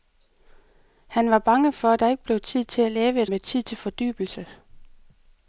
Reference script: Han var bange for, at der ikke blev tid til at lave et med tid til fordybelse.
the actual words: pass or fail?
pass